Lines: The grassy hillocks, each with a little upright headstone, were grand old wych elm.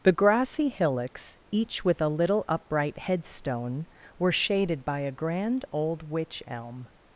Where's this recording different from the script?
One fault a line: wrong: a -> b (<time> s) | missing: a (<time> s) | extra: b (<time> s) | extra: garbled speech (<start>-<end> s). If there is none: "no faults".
extra: shaded by a (4.3 s)